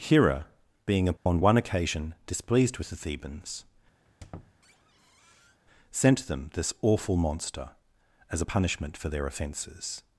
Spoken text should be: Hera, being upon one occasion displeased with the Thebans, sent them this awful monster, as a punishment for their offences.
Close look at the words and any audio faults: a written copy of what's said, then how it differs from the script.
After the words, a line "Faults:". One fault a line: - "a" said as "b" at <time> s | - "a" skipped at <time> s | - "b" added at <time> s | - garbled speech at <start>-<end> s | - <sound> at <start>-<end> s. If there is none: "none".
Hera, being upon one occasion displeased with the Thebans, sent them this awful monster, as a punishment for their offences.
Faults:
- dropout at 1.2-1.3 s
- squeak at 4.0-5.6 s